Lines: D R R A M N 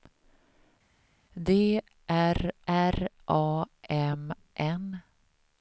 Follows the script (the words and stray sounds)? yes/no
yes